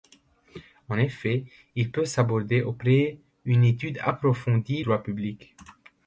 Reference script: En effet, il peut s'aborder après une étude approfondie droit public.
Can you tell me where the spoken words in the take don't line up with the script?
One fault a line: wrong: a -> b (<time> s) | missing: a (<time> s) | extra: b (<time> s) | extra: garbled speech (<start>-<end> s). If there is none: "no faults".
no faults